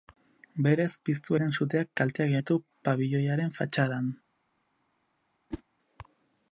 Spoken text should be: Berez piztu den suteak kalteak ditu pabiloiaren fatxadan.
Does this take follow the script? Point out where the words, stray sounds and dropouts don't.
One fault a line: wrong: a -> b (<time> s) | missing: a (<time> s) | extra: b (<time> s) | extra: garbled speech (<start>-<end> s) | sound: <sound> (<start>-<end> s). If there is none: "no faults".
sound: whoosh (5.5-5.6 s)